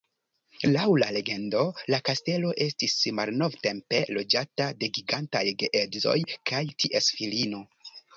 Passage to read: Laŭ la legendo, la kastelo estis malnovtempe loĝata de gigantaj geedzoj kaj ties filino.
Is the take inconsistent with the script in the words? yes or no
no